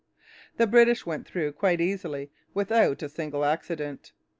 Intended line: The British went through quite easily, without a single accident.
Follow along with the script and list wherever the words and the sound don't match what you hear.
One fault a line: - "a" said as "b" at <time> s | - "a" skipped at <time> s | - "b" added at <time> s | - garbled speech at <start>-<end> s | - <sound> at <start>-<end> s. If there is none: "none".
none